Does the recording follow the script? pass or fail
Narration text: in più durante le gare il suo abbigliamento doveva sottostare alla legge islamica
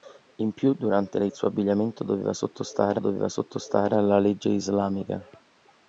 fail